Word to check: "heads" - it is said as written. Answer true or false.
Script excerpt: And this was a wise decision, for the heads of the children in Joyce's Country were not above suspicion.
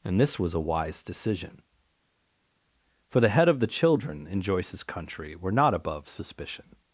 false